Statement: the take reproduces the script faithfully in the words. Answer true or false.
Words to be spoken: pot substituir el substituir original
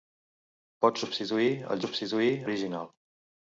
true